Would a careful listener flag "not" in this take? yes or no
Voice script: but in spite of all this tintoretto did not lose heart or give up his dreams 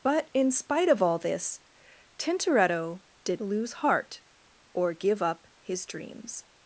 yes